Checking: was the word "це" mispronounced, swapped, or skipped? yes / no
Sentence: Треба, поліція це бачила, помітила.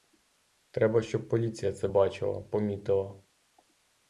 no